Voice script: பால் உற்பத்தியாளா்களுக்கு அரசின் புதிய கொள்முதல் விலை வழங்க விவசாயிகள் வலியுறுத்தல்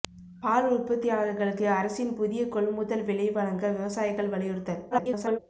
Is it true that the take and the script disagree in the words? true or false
true